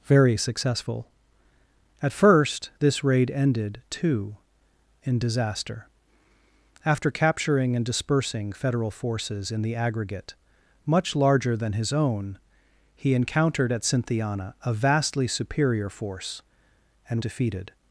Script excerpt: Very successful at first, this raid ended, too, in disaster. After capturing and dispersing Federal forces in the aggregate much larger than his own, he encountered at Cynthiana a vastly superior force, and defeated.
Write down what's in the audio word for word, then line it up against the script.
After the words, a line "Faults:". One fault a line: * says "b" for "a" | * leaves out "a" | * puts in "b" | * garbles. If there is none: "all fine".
Very successful at first, this raid ended, too, in disaster. After capturing and dispersing Federal forces in the aggregate much larger than his own, he encountered at Cynthiana a vastly superior force, and defeated.
Faults:
all fine